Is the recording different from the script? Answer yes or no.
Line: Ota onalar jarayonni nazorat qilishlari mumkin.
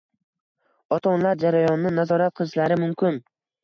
no